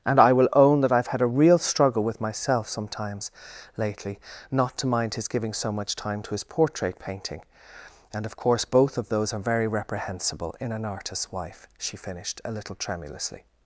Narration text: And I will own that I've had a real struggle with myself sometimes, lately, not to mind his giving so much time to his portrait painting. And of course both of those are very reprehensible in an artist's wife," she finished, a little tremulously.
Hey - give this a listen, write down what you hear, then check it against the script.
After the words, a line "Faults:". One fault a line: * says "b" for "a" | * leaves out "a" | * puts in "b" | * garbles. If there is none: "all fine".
And I will own that I've had a real struggle with myself sometimes, lately, not to mind his giving so much time to his portrait painting. And of course both of those are very reprehensible in an artist's wife," she finished, a little tremulously.
Faults:
all fine